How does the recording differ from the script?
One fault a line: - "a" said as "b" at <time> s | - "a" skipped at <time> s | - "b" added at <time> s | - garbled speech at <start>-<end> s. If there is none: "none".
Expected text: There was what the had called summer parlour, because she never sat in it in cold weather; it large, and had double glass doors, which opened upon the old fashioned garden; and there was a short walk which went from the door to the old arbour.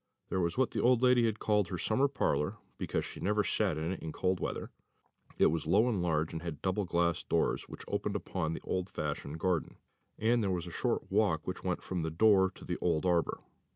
- "old lady" added at 0.8 s
- "her" added at 1.7 s
- "was low and" added at 5.5 s